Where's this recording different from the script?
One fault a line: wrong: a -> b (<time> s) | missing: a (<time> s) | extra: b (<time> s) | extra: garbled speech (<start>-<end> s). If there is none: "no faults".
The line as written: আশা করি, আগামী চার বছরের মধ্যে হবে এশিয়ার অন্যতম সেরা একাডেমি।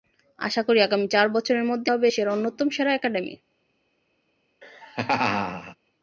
no faults